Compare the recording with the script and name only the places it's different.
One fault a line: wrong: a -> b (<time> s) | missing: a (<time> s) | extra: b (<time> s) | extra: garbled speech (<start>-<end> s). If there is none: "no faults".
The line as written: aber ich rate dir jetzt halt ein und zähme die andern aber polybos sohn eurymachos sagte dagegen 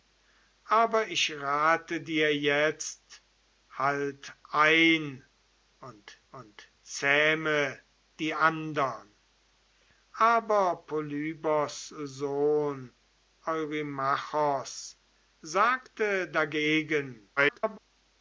extra: und (6.3 s)
extra: garbled speech (17.4-17.8 s)